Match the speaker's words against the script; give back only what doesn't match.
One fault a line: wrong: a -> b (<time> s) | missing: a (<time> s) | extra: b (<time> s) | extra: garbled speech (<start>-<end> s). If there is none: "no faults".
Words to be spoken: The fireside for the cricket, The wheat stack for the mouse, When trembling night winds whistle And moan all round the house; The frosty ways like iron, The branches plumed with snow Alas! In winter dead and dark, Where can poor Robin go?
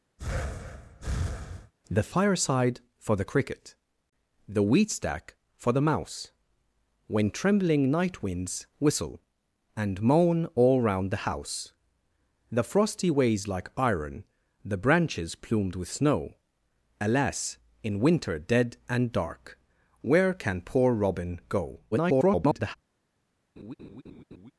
extra: garbled speech (21.9-22.8 s)